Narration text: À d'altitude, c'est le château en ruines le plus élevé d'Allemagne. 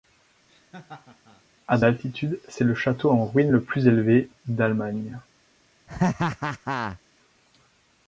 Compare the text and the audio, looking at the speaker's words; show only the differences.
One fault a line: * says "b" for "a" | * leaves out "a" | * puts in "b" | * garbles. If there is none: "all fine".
all fine